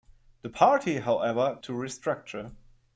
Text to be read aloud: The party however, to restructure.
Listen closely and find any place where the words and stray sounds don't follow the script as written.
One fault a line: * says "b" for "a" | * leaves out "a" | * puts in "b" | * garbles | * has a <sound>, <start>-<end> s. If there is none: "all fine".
all fine